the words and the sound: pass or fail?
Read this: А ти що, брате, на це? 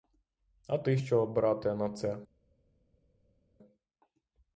pass